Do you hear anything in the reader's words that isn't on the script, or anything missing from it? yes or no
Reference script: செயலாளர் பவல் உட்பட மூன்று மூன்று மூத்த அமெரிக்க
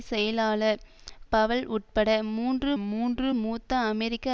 no